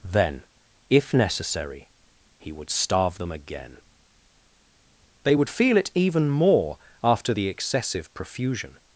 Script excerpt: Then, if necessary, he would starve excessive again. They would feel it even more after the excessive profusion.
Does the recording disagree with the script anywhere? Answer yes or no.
yes